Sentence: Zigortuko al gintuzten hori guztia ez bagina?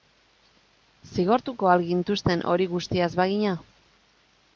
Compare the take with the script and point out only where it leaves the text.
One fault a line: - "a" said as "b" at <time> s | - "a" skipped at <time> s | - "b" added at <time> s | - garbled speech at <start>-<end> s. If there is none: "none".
none